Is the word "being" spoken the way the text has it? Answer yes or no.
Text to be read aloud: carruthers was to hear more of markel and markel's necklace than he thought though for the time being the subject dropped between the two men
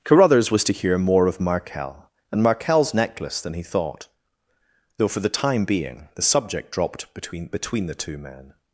yes